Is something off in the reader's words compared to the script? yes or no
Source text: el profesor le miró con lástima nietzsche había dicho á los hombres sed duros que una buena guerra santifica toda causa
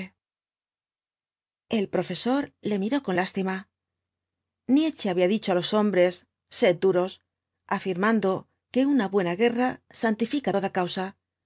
yes